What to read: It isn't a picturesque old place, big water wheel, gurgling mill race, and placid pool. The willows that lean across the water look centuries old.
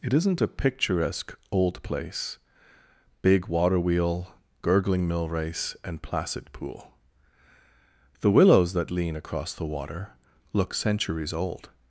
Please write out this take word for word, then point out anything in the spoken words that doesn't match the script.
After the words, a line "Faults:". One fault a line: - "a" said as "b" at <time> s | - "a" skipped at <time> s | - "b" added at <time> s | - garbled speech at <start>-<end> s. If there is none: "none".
It isn't a picturesque old place, big water wheel, gurgling mill race, and placid pool. The willows that lean across the water look centuries old.
Faults:
none